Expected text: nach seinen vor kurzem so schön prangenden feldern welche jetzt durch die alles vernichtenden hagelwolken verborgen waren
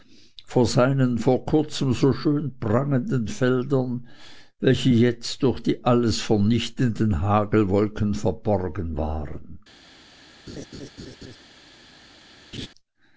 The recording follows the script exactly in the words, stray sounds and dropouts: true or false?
false